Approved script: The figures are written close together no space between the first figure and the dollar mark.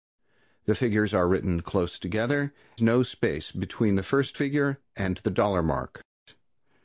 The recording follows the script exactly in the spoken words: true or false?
true